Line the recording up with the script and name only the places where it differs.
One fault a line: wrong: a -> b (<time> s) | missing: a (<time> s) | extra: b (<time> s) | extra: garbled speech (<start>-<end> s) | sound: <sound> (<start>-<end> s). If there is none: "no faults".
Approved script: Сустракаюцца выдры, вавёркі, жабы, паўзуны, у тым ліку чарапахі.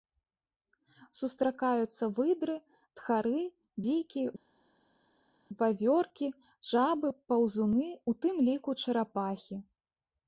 extra: тхары дзікі (3.0 s)